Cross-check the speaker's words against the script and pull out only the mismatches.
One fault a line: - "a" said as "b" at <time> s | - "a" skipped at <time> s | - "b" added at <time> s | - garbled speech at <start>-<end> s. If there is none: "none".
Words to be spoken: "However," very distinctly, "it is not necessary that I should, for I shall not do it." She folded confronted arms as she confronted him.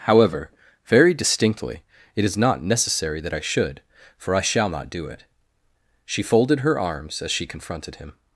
- "confronted" said as "her" at 6.6 s